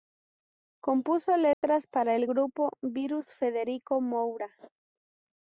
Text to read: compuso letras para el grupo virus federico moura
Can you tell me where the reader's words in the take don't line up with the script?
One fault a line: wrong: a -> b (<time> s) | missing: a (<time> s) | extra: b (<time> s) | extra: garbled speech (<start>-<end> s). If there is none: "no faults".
no faults